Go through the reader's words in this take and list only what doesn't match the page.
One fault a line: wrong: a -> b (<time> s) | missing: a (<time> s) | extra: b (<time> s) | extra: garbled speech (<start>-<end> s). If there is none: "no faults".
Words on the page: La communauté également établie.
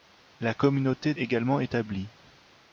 no faults